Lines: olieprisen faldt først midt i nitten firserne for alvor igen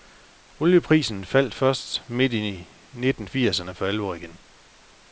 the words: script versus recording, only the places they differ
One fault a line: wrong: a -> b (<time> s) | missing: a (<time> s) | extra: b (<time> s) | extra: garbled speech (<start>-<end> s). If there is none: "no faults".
no faults